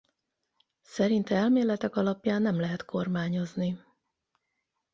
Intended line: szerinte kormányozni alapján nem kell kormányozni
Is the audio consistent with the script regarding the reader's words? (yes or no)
no